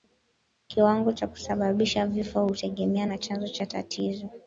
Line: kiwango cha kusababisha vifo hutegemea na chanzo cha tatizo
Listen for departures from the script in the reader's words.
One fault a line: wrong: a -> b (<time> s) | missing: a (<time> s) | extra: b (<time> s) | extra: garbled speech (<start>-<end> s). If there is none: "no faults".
no faults